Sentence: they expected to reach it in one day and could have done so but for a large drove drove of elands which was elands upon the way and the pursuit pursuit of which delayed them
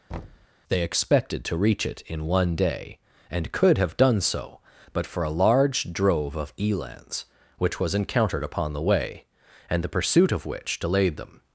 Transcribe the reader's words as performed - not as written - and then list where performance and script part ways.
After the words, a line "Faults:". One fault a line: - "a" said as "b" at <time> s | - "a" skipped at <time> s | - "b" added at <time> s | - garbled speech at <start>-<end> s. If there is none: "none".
they expected to reach it in one day and could have done so but for a large drove of elands which was encountered upon the way and the pursuit of which delayed them
Faults:
- "drove" skipped at 6.4 s
- "elands" said as "encountered" at 7.9 s
- "pursuit" skipped at 10.3 s